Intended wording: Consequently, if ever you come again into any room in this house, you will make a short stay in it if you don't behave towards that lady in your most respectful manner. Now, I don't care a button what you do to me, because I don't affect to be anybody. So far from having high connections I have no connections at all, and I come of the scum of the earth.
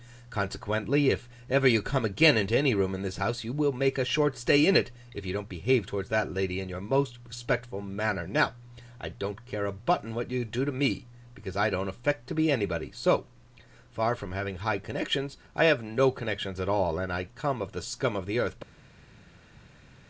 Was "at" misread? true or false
false